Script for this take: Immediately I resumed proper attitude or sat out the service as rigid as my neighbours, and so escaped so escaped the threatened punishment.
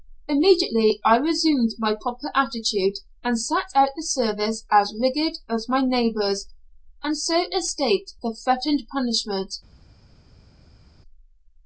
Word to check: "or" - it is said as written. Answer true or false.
false